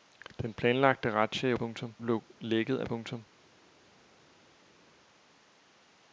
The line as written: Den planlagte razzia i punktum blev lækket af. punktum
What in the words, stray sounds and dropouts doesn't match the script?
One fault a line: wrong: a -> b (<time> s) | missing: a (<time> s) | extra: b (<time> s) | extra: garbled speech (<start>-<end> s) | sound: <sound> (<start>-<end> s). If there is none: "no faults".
no faults